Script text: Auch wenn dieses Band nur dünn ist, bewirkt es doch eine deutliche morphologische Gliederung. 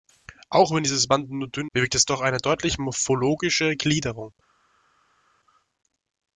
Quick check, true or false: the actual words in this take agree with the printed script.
false